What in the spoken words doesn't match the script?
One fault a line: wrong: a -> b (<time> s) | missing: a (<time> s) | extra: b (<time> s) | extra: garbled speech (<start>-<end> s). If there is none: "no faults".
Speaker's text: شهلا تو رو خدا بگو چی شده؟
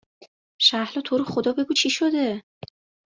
no faults